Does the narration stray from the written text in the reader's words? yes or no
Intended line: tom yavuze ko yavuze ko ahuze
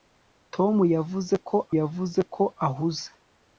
no